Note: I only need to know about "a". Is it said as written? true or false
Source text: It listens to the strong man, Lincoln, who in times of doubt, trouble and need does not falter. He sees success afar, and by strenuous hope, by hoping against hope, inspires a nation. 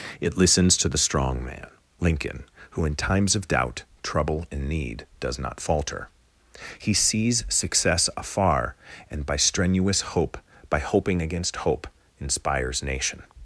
false